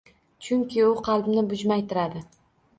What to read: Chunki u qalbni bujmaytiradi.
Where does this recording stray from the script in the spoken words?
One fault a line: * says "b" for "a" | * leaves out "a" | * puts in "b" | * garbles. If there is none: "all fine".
all fine